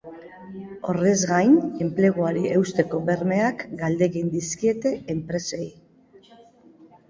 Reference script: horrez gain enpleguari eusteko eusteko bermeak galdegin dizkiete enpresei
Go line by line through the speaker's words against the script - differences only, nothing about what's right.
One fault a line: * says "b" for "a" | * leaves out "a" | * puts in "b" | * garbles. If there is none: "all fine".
* leaves out "eusteko"